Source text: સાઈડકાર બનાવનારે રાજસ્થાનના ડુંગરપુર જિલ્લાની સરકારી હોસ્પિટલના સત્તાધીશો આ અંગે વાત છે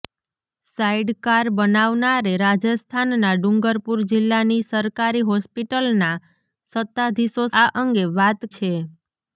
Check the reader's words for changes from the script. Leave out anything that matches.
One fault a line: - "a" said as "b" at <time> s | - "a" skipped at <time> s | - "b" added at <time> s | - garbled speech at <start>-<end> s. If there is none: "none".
none